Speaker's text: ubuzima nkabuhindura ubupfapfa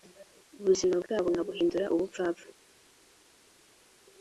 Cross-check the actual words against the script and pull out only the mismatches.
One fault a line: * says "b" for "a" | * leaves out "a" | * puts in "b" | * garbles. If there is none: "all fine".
* puts in "bwabo"